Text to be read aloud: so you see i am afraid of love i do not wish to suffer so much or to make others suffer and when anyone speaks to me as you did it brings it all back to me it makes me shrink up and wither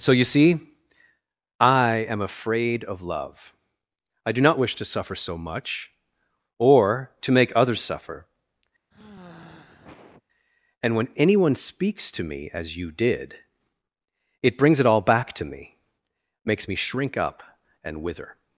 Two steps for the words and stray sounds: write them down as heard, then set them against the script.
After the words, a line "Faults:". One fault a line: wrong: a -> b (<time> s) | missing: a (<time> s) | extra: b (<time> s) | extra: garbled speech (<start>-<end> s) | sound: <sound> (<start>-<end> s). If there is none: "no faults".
so you see i am afraid of love i do not wish to suffer so much or to make others suffer and when anyone speaks to me as you did it brings it all back to me makes me shrink up and wither
Faults:
sound: sigh (8.9-10.2 s)
missing: it (15.8 s)